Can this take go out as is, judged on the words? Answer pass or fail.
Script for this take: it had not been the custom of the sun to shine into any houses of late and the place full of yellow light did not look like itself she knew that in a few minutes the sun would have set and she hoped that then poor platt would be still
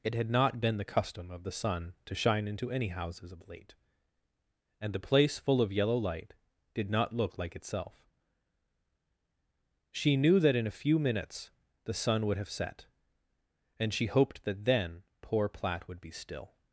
pass